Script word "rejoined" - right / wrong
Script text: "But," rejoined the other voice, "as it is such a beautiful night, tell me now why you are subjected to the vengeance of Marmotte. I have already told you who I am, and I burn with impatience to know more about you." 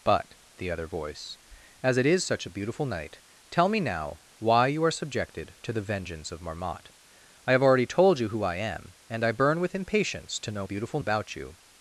wrong